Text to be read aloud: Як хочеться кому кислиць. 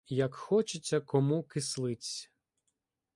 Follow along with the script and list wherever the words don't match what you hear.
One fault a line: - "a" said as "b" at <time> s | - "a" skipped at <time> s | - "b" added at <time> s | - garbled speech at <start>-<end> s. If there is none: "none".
none